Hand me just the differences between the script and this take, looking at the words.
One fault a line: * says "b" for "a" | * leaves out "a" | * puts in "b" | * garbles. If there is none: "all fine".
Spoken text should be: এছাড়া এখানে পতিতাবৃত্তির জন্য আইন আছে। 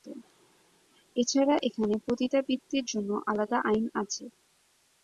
* puts in "আলাদা"